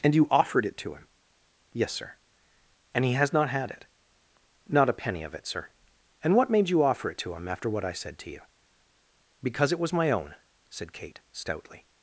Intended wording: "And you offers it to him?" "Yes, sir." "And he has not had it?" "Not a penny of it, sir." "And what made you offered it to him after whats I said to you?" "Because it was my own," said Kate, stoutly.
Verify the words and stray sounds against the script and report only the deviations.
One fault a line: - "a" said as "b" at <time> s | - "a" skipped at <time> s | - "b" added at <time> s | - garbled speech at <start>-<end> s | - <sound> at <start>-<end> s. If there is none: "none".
- "offers" said as "offered" at 0.3 s
- "offered" said as "offer" at 6.8 s
- "whats" said as "what" at 7.7 s